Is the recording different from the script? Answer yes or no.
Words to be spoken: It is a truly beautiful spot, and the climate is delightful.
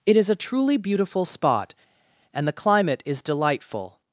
no